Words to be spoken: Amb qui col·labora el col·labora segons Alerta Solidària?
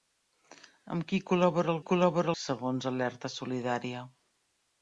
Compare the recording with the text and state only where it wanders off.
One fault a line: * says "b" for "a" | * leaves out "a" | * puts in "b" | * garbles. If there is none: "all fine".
all fine